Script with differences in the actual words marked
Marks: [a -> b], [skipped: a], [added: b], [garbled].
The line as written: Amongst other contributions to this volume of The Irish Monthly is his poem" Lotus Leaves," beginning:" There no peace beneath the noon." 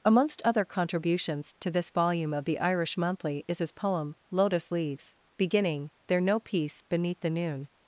Amongst other contributions to this volume of The Irish Monthly is his poem" Lotus Leaves," beginning:" There no peace beneath the noon."